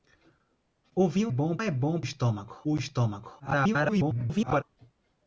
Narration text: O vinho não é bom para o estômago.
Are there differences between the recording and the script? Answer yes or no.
yes